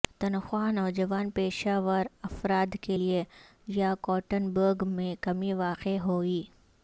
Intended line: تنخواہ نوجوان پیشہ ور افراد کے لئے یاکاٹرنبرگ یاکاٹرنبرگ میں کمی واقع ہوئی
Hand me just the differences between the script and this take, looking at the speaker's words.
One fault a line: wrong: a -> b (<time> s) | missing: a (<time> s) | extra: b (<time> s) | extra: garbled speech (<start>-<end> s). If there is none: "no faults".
missing: یاکاٹرنبرگ (4.9 s)